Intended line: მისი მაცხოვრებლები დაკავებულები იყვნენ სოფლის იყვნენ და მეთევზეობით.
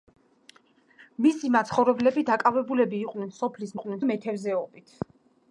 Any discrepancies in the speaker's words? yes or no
no